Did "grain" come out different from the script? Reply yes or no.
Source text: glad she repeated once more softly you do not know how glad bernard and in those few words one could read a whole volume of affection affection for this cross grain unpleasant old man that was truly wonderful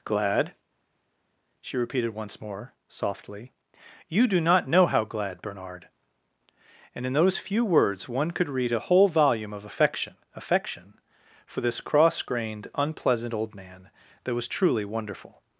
yes